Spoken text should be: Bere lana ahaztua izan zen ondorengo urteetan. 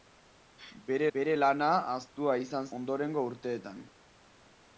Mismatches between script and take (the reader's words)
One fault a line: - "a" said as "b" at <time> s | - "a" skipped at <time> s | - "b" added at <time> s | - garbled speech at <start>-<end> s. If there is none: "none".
- "bere" added at 1.1 s
- "zen" skipped at 2.7 s